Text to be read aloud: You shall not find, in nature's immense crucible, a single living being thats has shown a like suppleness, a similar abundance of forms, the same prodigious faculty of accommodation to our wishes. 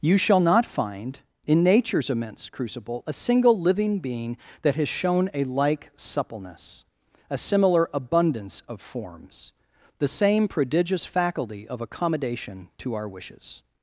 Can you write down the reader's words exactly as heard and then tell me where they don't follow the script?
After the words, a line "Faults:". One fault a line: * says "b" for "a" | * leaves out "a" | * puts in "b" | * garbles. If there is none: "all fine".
You shall not find, in nature's immense crucible, a single living being that has shown a like suppleness, a similar abundance of forms, the same prodigious faculty of accommodation to our wishes.
Faults:
* says "that" for "thats"